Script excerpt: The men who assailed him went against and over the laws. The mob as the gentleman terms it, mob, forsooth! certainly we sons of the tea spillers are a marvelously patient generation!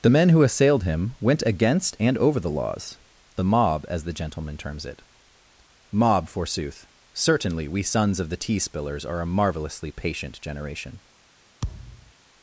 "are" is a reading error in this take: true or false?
false